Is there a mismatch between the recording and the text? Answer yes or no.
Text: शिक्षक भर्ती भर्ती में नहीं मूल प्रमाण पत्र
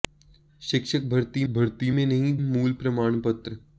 no